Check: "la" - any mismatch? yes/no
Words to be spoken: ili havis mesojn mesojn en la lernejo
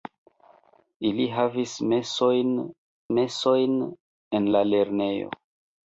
no